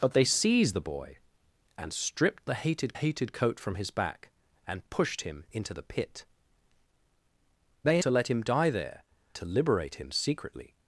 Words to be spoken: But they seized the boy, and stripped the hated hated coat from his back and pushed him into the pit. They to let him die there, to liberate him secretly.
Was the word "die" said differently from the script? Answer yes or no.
no